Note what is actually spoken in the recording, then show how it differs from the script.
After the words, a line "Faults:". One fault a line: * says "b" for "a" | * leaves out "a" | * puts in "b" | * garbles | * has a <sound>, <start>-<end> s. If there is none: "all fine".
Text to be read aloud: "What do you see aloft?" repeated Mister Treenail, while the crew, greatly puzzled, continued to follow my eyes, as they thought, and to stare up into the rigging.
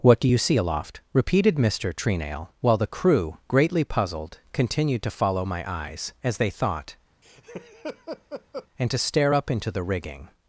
"What do you see aloft?" repeated Mister Treenail, while the crew, greatly puzzled, continued to follow my eyes, as they thought, and to stare up into the rigging.
Faults:
* has a laugh, 7.2-8.7 s